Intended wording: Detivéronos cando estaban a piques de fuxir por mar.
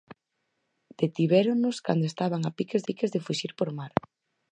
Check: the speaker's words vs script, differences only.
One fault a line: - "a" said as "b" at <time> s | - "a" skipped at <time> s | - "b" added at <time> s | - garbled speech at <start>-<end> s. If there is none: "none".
- "piques" added at 2.9 s